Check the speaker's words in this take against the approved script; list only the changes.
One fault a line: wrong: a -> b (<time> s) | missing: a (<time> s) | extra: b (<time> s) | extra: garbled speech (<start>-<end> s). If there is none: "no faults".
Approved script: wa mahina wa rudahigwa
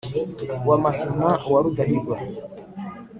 no faults